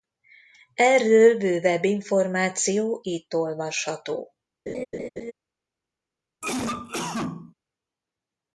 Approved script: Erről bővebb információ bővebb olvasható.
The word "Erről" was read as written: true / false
true